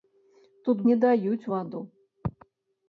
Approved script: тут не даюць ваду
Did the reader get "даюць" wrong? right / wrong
right